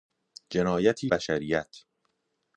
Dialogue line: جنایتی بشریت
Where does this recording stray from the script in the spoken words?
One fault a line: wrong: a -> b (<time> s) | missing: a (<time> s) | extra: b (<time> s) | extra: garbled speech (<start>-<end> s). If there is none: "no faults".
no faults